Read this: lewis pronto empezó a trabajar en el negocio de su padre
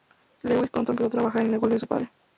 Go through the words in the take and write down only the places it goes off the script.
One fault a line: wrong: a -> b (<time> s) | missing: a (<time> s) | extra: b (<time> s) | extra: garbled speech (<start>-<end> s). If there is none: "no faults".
no faults